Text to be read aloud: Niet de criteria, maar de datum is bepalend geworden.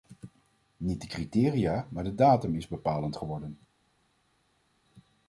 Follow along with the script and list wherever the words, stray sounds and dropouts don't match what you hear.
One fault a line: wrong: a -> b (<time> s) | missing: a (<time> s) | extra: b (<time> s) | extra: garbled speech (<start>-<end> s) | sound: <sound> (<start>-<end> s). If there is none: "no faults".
no faults